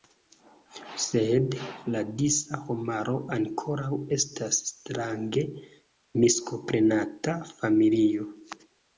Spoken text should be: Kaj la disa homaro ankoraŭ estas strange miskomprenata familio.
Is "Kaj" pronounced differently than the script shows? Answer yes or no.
yes